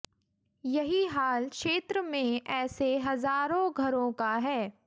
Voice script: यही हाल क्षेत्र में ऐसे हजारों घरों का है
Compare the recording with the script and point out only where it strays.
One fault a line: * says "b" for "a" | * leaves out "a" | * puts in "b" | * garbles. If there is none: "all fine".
all fine